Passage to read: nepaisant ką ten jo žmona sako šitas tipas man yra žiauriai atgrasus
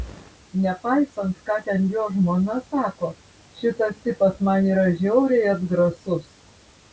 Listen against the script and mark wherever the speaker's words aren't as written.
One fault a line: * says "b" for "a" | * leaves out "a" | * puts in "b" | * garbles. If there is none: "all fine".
all fine